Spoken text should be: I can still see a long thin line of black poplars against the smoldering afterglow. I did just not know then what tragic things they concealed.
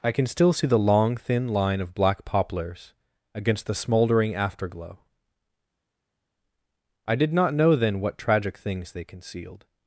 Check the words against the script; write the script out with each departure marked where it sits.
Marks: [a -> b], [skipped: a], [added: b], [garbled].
I can still see [a -> the] long thin line of black poplars against the smoldering afterglow. I did [skipped: just] not know then what tragic things they concealed.